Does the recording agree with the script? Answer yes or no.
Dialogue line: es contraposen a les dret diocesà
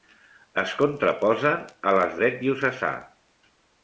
yes